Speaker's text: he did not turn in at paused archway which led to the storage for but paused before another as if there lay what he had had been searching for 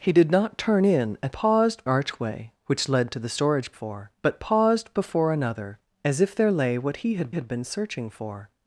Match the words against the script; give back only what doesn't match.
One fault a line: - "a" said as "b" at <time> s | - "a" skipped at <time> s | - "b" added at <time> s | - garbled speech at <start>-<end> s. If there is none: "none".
none